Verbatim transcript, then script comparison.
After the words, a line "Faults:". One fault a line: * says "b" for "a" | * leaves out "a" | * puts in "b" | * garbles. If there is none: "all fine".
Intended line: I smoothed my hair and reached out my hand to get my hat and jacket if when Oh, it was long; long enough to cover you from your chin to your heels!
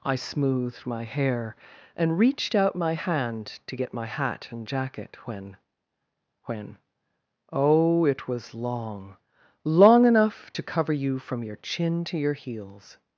I smoothed my hair and reached out my hand to get my hat and jacket when when Oh, it was long; long enough to cover you from your chin to your heels!
Faults:
* says "when" for "if"